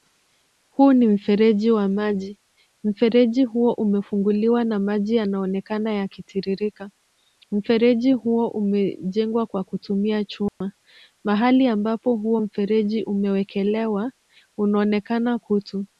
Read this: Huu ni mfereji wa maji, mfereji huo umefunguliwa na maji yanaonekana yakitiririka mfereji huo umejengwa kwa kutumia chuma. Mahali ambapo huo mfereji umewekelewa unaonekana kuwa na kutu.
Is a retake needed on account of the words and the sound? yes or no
yes